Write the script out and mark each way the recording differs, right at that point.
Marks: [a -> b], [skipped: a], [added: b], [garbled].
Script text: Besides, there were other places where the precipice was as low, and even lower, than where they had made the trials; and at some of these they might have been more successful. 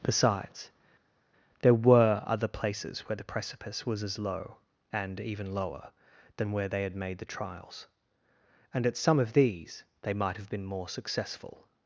Besides, there were other places where the precipice was as low, and even lower, than where they had made the trials; and at some of these they might have been more successful.